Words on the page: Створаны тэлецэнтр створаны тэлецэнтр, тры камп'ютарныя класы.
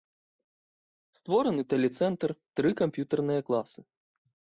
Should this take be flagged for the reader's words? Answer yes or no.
yes